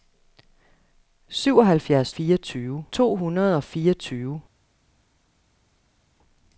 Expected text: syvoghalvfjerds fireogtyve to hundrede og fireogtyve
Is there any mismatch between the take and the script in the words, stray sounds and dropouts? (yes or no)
no